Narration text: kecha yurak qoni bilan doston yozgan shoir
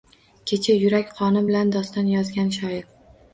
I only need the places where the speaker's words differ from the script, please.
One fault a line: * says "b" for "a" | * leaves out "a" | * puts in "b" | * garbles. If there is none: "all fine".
all fine